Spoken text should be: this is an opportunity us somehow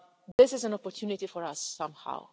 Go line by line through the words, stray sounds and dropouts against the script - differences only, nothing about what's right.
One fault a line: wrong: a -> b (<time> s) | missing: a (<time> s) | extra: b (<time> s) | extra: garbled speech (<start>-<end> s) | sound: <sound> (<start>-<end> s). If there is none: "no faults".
sound: dropout (0.3-0.4 s)
extra: for (1.2 s)